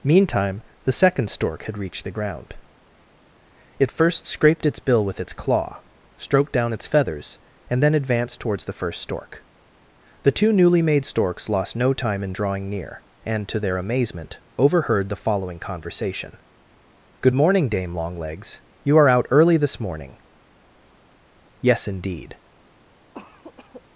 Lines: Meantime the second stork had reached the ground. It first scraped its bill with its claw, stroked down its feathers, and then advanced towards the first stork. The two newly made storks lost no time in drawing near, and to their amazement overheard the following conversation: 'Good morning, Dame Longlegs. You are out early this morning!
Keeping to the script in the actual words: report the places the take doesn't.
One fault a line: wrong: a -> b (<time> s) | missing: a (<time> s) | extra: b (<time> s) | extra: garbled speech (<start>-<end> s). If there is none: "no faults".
extra: Yes indeed (21.6 s)